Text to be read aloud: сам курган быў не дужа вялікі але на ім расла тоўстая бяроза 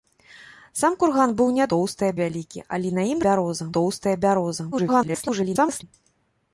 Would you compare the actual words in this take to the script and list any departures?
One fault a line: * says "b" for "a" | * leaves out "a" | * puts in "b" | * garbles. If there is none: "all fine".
* says "тоўстая" for "дужа"
* says "бяроза" for "расла"
* garbles